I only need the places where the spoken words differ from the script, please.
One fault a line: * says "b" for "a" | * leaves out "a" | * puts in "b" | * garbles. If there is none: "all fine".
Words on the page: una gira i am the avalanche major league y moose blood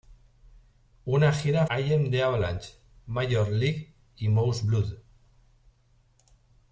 all fine